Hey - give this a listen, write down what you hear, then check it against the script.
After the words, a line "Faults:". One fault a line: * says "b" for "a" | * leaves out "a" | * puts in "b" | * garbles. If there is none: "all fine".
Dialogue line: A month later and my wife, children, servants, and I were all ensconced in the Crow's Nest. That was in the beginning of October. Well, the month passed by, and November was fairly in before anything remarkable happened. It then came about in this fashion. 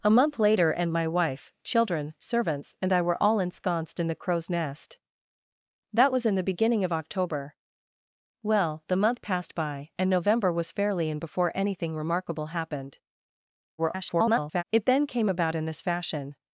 A month later and my wife, children, servants, and I were all ensconced in the Crow's Nest. That was in the beginning of October. Well, the month passed by, and November was fairly in before anything remarkable happened. [garbled] It then came about in this fashion.
Faults:
* garbles